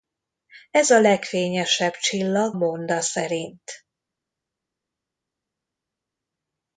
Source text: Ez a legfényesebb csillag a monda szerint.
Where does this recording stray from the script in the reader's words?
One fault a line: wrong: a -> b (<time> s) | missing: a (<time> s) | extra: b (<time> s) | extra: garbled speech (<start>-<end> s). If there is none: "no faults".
missing: a (2.6 s)